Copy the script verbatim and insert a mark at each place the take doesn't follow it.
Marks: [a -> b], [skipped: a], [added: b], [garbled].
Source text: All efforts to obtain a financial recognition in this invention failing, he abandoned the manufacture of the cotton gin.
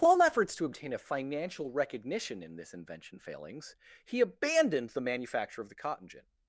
All efforts to obtain a financial recognition in this invention [failing, -> failings] he abandoned the manufacture of the cotton gin.